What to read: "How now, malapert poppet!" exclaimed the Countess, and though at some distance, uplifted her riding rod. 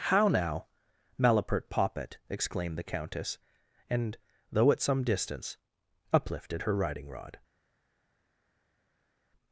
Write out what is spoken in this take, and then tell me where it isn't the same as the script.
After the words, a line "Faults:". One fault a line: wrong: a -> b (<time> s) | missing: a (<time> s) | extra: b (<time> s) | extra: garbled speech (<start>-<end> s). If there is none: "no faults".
"How now, malapert poppet!" exclaimed the Countess, and though at some distance, uplifted her riding rod.
Faults:
no faults